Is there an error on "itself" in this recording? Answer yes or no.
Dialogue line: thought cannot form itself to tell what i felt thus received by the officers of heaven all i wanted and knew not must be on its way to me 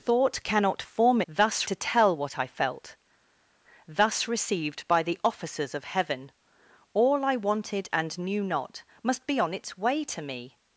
yes